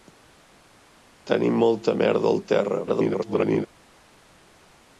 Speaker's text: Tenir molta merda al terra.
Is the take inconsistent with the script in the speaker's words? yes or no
yes